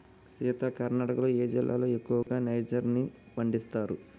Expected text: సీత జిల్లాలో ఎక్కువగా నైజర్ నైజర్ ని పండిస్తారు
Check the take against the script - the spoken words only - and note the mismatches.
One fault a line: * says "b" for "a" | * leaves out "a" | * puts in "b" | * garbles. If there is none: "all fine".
* puts in "కర్ణాటకలో ఏ"
* leaves out "నైజర్"